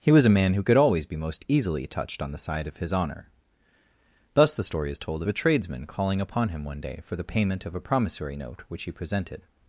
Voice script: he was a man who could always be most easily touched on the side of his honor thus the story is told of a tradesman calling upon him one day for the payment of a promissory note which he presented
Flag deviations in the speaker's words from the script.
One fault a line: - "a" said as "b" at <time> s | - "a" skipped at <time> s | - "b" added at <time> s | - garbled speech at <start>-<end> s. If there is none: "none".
none